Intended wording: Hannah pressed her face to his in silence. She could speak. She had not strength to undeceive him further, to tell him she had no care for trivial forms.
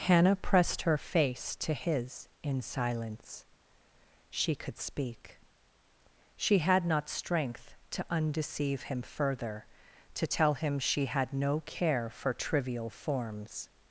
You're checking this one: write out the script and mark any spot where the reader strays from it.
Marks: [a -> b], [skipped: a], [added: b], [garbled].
Hannah pressed her face to his in silence. She could speak. She had not strength to undeceive him further, to tell him she had no care for trivial forms.